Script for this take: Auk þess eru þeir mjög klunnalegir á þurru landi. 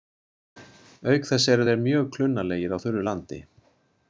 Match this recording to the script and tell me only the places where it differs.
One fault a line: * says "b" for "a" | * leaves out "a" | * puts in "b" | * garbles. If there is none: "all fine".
all fine